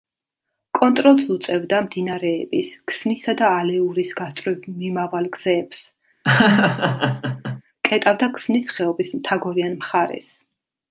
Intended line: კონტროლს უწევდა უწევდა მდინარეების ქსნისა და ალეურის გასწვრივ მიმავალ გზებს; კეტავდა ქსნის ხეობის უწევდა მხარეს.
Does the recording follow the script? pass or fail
fail